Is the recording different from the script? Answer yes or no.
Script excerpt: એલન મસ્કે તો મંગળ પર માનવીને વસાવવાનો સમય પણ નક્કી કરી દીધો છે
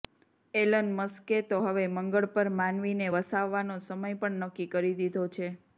yes